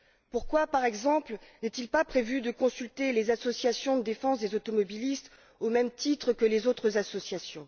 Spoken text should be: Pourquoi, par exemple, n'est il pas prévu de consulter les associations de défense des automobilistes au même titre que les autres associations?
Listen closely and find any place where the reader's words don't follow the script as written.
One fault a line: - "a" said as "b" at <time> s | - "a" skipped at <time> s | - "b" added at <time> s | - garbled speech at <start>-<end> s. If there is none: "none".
none